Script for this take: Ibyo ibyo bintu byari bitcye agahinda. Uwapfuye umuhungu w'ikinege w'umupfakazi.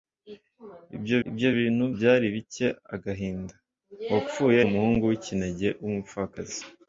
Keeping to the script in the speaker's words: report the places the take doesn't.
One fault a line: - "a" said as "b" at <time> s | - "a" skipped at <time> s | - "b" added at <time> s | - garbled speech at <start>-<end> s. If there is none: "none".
none